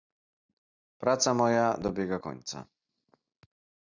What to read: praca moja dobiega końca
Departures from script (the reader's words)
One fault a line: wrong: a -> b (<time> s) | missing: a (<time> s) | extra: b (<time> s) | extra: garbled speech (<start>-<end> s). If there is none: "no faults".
no faults